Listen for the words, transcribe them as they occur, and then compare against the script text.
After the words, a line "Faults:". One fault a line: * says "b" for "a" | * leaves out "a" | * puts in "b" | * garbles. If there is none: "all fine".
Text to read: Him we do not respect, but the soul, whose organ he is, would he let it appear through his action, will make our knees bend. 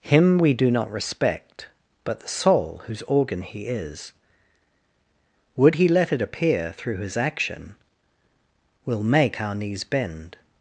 Him we do not respect, but the soul, whose organ he is, would he let it appear through his action, will make our knees bend.
Faults:
all fine